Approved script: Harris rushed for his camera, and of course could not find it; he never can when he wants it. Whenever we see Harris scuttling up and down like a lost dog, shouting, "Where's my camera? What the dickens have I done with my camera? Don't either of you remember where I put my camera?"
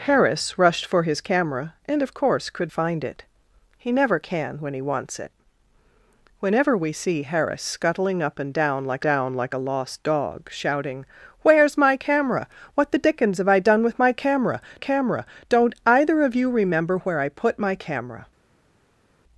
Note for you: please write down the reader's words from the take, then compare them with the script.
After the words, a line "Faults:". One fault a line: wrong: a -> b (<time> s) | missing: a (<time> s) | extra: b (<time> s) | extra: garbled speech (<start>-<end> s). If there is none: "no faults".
Harris rushed for his camera, and of course could find it; he never can when he wants it. Whenever we see Harris scuttling up and down like down like a lost dog, shouting, "Where's my camera? What the dickens have I done with my camera camera? Don't either of you remember where I put my camera?"
Faults:
missing: not (2.7 s)
extra: down like (9.0 s)
extra: camera (14.8 s)